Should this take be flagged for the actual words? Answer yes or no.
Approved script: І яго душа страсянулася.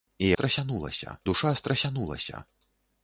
yes